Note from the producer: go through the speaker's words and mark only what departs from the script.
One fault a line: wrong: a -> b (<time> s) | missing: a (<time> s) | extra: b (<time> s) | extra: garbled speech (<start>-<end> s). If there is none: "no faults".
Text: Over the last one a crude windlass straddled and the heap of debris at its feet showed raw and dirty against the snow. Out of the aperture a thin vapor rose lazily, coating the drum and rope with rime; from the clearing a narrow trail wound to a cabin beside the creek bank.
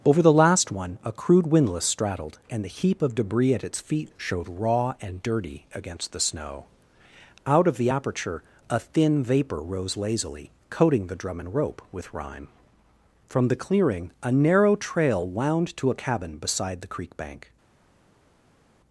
no faults